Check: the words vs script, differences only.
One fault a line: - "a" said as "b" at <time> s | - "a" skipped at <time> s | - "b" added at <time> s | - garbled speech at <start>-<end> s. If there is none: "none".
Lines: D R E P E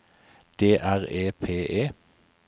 none